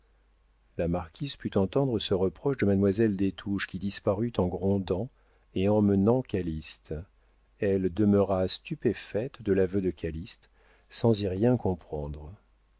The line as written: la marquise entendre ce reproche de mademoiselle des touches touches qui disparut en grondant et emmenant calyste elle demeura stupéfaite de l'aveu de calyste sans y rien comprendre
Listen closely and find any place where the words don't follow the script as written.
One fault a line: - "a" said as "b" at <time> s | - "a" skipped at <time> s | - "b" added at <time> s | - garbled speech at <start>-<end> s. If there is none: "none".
- "put" added at 1.3 s
- "touches" skipped at 3.7 s